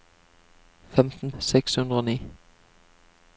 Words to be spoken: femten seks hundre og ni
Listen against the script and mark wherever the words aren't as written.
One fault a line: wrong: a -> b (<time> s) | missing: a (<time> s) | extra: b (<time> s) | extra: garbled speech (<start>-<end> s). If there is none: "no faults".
no faults